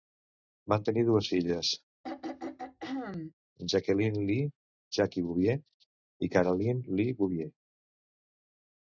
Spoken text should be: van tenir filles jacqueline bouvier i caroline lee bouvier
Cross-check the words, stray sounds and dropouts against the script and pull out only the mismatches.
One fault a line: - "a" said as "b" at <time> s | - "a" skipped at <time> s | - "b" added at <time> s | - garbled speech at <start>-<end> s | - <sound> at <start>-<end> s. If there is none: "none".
- "dues" added at 1.1 s
- throat clearing at 2.0-3.3 s
- "lee jackie" added at 4.3 s